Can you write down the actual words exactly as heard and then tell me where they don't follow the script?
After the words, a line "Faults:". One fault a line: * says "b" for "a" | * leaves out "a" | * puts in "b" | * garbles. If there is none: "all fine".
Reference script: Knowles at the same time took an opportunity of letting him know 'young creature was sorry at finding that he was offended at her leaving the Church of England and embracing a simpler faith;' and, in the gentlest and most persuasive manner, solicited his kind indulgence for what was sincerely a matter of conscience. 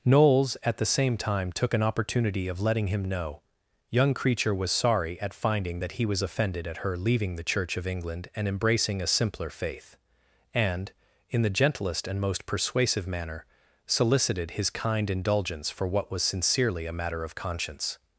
Knowles at the same time took an opportunity of letting him know 'young creature was sorry at finding that he was offended at her leaving the Church of England and embracing a simpler faith;' and, in the gentlest and most persuasive manner, solicited his kind indulgence for what was sincerely a matter of conscience.
Faults:
all fine